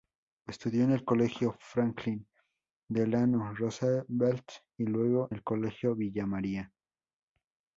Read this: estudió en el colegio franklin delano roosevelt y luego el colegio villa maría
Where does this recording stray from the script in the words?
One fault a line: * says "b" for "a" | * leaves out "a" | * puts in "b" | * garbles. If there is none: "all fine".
all fine